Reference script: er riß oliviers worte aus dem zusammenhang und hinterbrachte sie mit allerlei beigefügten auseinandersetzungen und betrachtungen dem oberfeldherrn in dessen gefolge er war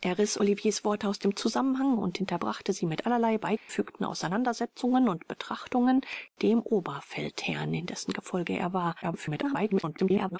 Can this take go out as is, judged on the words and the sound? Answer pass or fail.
fail